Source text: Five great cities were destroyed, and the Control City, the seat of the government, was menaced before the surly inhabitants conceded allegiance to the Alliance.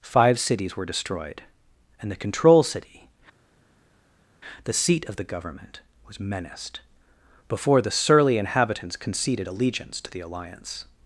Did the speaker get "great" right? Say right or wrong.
wrong